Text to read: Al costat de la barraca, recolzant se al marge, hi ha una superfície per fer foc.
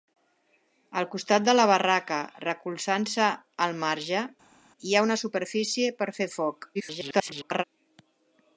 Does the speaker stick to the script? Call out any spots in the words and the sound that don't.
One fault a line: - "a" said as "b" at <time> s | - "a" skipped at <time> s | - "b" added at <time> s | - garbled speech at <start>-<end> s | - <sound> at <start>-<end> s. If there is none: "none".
- garbled speech at 6.7-7.6 s